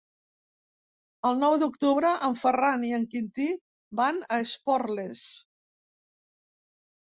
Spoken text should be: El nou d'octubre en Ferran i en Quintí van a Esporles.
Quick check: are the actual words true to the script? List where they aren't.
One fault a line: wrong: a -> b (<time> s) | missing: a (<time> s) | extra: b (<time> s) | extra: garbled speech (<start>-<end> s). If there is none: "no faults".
no faults